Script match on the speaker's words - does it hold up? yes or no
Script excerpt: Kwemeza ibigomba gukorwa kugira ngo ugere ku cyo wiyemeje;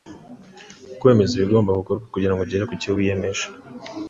yes